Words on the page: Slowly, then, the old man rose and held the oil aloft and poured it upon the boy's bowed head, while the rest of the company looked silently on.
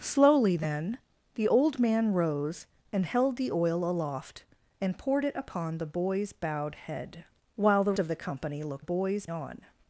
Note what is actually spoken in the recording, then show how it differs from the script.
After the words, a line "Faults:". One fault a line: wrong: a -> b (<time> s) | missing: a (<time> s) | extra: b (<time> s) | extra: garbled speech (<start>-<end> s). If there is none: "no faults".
Slowly, then, the old man rose and held the oil aloft and poured it upon the boy's bowed head, while the of the company looked boy's on.
Faults:
missing: rest (7.9 s)
wrong: silently -> boy's (8.8 s)